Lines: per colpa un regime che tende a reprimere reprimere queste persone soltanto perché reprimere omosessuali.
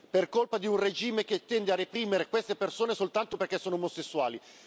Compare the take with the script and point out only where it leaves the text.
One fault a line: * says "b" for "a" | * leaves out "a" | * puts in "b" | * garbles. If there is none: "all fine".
* puts in "di"
* leaves out "reprimere"
* says "sono" for "reprimere"